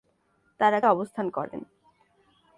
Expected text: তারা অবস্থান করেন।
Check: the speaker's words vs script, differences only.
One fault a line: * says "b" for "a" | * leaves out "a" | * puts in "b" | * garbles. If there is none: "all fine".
all fine